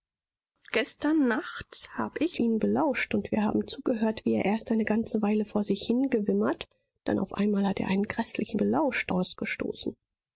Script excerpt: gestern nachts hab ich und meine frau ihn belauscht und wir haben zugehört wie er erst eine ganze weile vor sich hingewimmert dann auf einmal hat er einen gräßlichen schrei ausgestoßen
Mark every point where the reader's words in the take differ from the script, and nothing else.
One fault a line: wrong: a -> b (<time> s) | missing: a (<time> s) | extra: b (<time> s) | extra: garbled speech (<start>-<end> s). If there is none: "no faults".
missing: und meine frau (2.4 s)
wrong: schrei -> belauscht (8.6 s)